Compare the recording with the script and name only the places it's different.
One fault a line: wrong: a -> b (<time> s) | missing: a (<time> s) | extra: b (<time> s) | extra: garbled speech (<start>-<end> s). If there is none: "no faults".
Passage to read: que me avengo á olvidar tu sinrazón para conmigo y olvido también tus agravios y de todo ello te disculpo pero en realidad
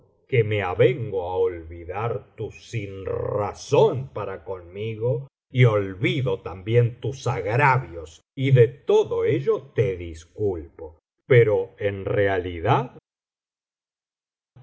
no faults